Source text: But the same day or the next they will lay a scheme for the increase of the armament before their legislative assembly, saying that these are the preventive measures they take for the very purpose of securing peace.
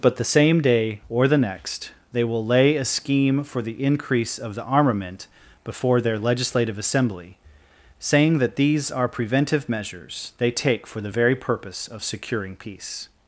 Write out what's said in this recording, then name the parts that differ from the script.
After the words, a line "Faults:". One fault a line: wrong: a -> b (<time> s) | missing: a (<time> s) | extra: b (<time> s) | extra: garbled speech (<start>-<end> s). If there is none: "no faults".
But the same day or the next they will lay a scheme for the increase of the armament before their legislative assembly, saying that these are preventive measures they take for the very purpose of securing peace.
Faults:
missing: the (9.1 s)